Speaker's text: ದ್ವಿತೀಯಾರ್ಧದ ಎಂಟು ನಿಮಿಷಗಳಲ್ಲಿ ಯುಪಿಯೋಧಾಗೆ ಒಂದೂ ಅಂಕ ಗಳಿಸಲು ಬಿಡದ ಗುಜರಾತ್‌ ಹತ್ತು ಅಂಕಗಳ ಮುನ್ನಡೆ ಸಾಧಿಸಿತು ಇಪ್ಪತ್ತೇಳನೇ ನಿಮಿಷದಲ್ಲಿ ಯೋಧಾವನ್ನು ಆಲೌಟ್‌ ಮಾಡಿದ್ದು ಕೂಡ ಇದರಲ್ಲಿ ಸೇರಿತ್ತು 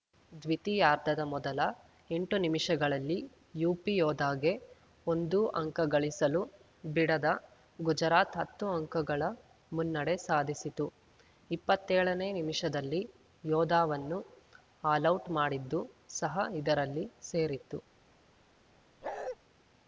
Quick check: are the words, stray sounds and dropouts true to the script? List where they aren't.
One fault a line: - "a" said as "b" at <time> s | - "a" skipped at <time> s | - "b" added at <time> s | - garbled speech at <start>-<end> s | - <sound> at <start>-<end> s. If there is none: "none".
- "ಮೊದಲ" added at 1.3 s
- "ಕೂಡ" said as "ಸಹ" at 16.1 s
- bark at 19.0-19.4 s